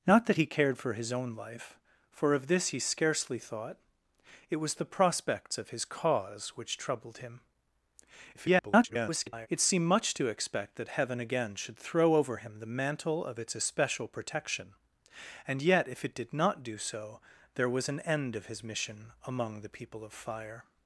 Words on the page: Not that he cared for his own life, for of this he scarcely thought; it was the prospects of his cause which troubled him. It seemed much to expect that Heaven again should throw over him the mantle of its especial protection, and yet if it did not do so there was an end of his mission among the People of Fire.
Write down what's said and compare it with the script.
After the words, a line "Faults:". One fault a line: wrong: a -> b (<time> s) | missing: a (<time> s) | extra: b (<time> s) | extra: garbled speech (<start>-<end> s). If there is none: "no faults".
Not that he cared for his own life, for of this he scarcely thought; it was the prospects of his cause which troubled him. [garbled] It seemed much to expect that Heaven again should throw over him the mantle of its especial protection, and yet if it did not do so there was an end of his mission among the People of Fire.
Faults:
extra: garbled speech (8.3-9.5 s)